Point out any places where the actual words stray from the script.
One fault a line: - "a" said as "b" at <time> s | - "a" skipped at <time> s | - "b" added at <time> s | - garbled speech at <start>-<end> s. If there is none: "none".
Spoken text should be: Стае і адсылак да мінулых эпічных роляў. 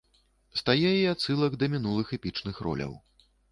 none